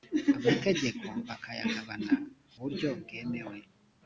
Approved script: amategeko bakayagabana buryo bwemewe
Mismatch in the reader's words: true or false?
false